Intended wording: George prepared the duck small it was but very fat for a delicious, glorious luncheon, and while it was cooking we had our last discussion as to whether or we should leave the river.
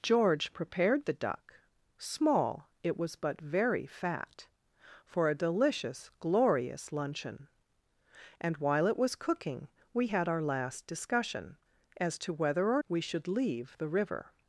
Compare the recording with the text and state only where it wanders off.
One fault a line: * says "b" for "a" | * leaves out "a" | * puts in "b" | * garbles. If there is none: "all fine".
all fine